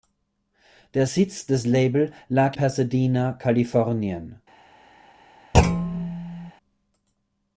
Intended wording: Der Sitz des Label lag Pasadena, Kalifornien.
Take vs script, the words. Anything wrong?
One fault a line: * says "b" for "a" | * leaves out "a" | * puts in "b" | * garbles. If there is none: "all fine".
all fine